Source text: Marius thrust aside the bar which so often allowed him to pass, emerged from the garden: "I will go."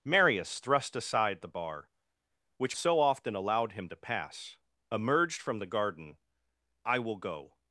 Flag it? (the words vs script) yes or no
no